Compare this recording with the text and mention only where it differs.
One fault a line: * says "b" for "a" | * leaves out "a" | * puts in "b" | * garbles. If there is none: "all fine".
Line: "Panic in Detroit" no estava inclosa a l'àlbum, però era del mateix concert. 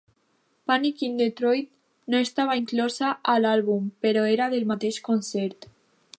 all fine